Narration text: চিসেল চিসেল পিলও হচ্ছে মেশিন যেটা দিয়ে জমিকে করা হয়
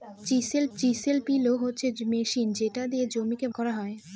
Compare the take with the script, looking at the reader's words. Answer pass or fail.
pass